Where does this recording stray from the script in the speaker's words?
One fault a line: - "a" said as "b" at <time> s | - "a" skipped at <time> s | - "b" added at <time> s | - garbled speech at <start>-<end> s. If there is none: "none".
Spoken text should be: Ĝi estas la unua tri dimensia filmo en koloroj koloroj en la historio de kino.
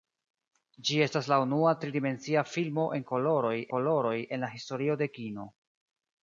none